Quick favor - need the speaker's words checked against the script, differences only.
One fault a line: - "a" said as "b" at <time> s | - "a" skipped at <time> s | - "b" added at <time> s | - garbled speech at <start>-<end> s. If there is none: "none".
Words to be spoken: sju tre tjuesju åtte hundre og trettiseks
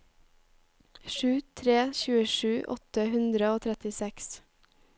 none